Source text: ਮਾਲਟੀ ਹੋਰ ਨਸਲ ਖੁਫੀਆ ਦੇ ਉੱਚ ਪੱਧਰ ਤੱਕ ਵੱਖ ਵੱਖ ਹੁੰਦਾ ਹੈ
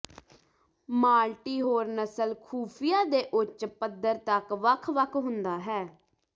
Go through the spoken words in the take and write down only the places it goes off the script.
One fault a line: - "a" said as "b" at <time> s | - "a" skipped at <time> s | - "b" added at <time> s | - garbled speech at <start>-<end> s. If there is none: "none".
none